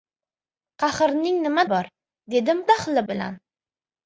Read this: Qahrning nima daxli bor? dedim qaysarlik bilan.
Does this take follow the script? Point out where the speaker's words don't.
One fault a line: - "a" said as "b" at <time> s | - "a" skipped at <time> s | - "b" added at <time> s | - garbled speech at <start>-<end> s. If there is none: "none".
- "daxli" skipped at 1.6 s
- "qaysarlik" said as "daxli" at 2.7 s